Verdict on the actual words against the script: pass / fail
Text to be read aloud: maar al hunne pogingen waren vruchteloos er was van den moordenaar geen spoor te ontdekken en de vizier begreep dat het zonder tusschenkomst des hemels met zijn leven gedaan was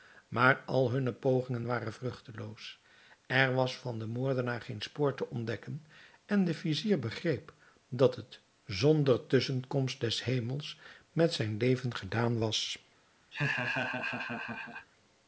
pass